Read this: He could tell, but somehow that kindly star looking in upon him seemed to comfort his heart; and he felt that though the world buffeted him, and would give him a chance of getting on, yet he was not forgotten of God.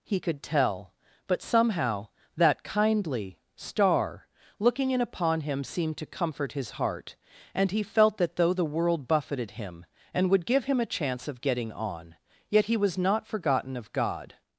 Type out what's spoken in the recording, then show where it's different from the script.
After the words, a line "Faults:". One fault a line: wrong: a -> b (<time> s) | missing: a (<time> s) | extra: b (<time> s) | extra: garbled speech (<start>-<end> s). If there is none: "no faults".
He could tell, but somehow that kindly star looking in upon him seemed to comfort his heart; and he felt that though the world buffeted him, and would give him a chance of getting on, yet he was not forgotten of God.
Faults:
no faults